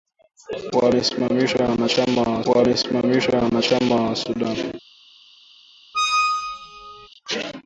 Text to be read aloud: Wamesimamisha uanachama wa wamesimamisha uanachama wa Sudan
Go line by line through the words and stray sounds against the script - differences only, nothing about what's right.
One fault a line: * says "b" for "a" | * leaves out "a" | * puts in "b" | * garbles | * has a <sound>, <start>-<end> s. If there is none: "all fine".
* has a squeak, 5.9-7.1 s